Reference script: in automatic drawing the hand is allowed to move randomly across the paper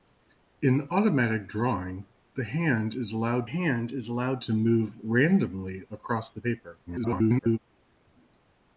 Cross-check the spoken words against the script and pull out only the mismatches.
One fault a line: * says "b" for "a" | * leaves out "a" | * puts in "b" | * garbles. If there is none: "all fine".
* puts in "hand is allowed"
* garbles